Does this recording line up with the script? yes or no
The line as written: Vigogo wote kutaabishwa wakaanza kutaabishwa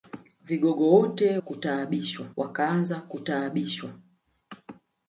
yes